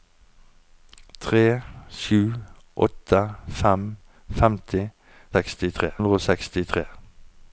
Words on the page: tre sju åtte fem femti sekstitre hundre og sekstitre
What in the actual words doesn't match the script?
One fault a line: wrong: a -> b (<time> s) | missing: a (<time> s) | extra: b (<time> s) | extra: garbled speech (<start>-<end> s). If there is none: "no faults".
no faults